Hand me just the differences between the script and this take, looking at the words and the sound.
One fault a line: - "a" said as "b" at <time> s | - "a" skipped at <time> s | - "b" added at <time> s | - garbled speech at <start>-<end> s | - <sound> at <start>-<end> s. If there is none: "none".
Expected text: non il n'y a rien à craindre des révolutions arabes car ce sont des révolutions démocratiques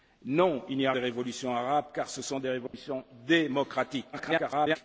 - "rien à craindre" skipped at 0.9 s
- dropout at 2.7-2.7 s
- garbled speech at 4.1-4.8 s